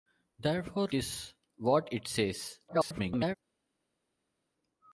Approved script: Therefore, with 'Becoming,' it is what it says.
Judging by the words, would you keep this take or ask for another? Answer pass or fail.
fail